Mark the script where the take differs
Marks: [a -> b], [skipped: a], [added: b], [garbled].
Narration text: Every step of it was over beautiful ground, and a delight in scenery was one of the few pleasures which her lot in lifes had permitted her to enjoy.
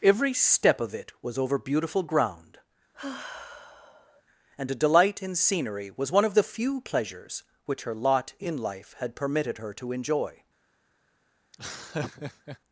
Every step of it was over beautiful ground, and a delight in scenery was one of the few pleasures which her lot in [lifes -> life] had permitted her to enjoy.